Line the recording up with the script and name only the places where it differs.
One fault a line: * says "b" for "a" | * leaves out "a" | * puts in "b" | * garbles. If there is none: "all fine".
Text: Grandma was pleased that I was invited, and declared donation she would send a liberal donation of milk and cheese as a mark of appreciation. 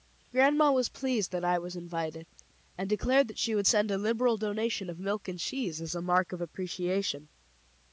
* says "that" for "donation"